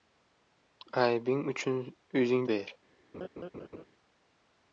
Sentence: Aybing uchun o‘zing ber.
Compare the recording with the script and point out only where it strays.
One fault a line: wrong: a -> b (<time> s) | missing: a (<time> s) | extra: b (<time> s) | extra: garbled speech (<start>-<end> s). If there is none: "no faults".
no faults